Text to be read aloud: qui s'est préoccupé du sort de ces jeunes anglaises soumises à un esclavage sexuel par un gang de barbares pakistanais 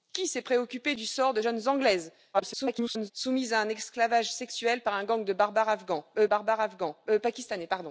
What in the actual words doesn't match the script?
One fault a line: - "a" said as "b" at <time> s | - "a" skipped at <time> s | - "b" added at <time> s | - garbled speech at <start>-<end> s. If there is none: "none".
- "ces" skipped at 1.4 s
- garbled speech at 2.3-3.1 s
- "barbares" added at 6.2 s